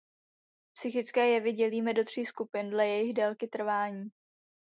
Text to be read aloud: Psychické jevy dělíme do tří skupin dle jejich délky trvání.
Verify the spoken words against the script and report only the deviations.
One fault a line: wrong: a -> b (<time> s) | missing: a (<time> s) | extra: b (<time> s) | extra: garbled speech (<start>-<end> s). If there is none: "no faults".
no faults